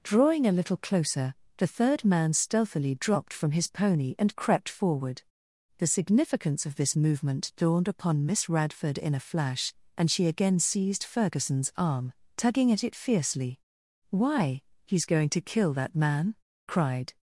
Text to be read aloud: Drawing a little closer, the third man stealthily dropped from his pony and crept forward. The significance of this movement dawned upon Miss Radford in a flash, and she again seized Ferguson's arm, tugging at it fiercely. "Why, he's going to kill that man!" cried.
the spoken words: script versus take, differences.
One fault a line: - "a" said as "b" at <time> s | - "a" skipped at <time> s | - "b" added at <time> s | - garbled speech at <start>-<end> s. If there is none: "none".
none